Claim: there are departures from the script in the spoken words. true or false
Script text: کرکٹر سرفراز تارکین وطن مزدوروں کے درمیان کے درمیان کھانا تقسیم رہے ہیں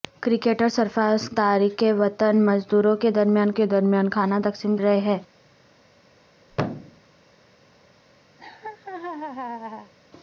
false